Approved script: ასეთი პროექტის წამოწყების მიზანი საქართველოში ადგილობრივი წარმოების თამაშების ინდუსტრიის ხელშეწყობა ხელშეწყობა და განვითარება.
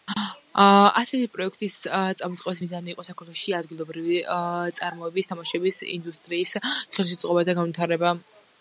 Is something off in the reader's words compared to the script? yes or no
yes